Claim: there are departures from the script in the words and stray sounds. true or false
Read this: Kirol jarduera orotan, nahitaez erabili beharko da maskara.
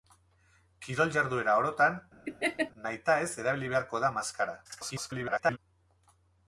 true